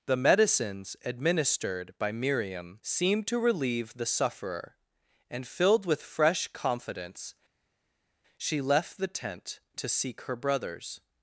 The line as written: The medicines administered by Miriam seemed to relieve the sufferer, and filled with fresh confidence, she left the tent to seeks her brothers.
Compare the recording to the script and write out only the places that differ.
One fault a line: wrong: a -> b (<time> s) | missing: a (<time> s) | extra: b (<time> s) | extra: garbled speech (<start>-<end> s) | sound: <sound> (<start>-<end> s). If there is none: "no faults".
wrong: seeks -> seek (9.9 s)